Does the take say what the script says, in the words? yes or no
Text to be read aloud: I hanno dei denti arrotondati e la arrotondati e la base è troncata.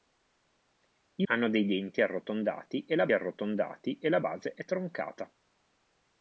yes